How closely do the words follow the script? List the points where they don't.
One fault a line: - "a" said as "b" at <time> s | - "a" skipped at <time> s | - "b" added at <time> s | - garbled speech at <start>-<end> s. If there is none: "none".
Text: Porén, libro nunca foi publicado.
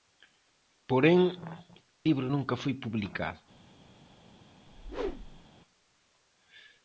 none